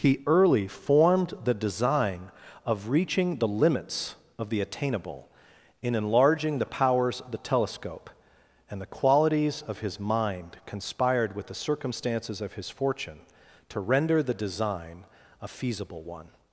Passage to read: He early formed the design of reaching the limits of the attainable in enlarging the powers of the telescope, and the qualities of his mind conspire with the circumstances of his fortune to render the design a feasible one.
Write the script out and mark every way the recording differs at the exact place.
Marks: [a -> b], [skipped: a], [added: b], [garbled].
He early formed the design of reaching the limits of the attainable in enlarging the powers of the telescope, and the qualities of his mind [conspire -> conspired] with the circumstances of his fortune to render the design a feasible one.